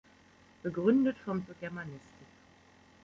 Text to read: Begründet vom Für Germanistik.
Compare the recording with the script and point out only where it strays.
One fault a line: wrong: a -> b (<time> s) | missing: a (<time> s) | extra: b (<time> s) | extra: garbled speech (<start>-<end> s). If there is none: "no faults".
no faults